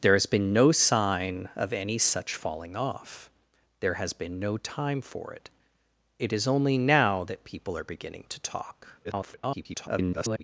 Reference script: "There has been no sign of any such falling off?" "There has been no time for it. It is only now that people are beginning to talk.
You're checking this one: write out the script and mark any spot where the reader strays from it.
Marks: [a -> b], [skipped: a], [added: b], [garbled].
"There has been no sign of any such falling off?" "There has been no time for it. It is only now that people are beginning to talk. [garbled]